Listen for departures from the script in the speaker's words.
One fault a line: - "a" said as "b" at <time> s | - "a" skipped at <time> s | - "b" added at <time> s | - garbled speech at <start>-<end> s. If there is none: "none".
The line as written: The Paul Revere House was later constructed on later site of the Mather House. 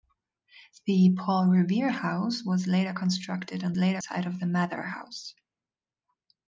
none